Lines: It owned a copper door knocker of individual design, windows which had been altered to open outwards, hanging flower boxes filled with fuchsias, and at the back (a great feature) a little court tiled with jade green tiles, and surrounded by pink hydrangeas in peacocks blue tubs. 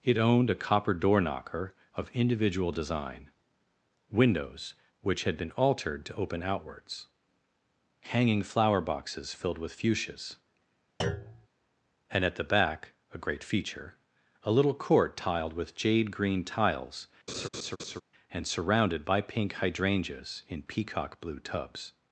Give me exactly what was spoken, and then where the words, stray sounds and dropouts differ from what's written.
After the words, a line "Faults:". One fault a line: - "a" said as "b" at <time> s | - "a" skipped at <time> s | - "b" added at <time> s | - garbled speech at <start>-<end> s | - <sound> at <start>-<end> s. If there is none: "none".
It owned a copper door knocker of individual design, windows which had been altered to open outwards, hanging flower boxes filled with fuchsias, and at the back (a great feature) a little court tiled with jade green tiles, and surrounded by pink hydrangeas in peacock blue tubs.
Faults:
- thud at 11.0-11.5 s
- laugh at 17.3-18.0 s
- "peacocks" said as "peacock" at 20.6 s